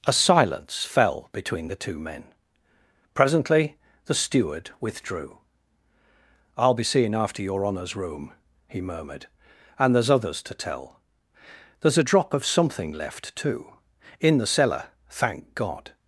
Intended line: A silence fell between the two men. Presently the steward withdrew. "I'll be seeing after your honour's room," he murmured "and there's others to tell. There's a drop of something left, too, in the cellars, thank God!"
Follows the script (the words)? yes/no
no